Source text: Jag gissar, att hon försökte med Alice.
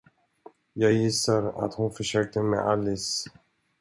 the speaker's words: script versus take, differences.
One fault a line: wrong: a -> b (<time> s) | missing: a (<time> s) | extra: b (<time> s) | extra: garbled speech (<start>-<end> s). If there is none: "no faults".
no faults